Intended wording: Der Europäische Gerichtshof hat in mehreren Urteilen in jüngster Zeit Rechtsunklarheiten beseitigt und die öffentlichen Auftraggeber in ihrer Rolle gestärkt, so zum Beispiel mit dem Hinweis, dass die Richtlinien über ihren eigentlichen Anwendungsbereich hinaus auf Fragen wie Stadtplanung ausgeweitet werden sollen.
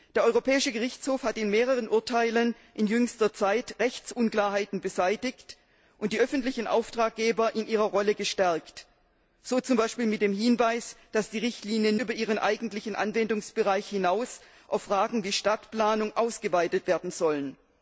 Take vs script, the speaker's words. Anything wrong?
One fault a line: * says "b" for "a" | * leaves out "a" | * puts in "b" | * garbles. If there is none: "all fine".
all fine